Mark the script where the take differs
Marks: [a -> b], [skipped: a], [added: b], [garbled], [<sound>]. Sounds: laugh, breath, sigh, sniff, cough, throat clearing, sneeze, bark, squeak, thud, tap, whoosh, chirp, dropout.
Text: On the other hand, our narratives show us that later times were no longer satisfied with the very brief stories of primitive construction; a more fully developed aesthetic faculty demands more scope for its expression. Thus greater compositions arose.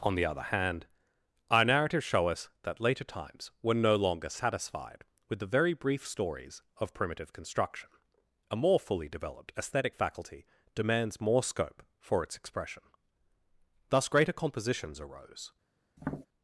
On the other hand, our narratives show us that later times were no longer satisfied with the very brief stories of primitive construction; a more fully developed aesthetic faculty demands more scope for its expression. Thus greater compositions arose. [tap]